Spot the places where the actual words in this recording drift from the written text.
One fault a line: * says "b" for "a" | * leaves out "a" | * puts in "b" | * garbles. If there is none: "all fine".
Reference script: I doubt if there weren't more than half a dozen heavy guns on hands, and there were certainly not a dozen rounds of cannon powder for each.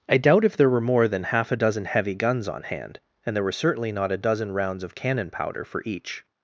* says "were" for "weren't"
* says "hand" for "hands"